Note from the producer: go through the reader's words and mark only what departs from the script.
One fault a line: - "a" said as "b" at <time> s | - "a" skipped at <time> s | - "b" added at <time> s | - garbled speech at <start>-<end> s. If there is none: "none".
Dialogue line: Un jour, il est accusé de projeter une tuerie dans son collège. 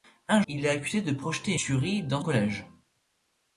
- "jour" skipped at 0.4 s
- "une" skipped at 1.6 s
- "son" skipped at 2.2 s